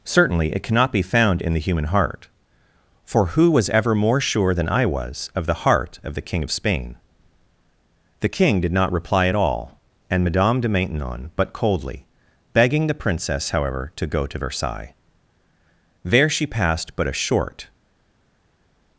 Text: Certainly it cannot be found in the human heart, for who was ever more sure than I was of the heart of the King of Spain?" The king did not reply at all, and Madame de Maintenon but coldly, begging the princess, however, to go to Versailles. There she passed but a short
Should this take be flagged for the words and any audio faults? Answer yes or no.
no